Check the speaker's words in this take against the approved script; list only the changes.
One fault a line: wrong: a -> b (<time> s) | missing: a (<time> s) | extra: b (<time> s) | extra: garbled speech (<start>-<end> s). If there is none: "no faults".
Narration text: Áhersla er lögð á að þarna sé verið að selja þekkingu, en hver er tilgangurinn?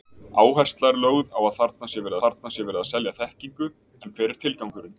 extra: þarna sé verið (2.2 s)